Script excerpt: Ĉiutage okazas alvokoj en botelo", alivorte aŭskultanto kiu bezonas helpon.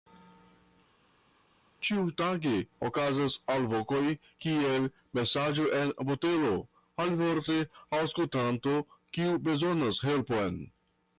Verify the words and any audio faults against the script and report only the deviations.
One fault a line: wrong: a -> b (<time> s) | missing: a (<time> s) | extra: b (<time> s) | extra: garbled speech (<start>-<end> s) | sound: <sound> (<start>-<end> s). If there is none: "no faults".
extra: kiel Mesaĝo (4.4 s)